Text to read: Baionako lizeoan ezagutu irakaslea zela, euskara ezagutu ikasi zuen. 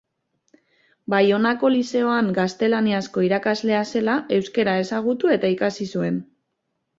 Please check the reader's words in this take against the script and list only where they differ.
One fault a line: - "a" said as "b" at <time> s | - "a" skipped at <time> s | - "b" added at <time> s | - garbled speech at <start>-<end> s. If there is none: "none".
- "ezagutu" said as "gaztelaniazko" at 2.4 s
- "eta" added at 5.4 s